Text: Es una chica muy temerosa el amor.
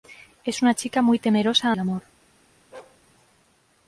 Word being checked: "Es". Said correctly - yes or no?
yes